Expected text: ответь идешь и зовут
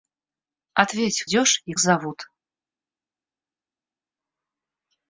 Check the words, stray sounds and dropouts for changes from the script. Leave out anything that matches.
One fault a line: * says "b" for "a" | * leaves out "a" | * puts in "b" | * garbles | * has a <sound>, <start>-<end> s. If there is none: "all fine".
all fine